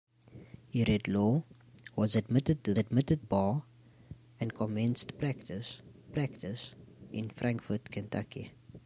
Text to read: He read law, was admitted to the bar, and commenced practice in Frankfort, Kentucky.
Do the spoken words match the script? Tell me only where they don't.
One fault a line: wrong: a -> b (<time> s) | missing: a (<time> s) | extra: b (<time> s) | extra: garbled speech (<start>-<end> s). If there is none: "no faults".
wrong: the -> admitted (2.8 s)
extra: practice (6.1 s)